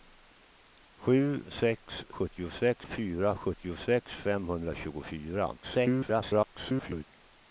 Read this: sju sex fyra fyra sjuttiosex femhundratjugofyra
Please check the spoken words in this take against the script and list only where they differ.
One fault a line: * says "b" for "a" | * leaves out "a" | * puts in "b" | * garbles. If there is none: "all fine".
* says "sjuttiosex" for "fyra"
* garbles